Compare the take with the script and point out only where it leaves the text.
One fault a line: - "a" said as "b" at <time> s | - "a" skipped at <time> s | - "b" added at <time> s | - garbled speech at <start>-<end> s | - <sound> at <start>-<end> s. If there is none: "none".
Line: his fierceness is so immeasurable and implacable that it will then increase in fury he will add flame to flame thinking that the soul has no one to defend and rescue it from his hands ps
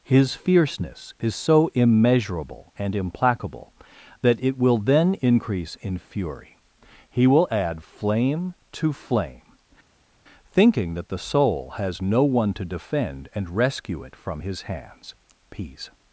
- "ps" said as "peace" at 15.5 s